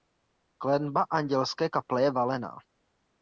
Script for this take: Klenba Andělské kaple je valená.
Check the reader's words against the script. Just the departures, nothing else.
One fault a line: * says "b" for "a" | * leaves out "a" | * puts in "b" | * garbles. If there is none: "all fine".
all fine